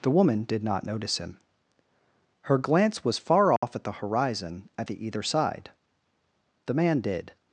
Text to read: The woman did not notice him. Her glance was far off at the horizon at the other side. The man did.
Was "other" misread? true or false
true